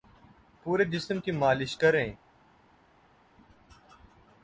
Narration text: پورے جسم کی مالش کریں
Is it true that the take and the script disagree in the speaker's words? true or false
false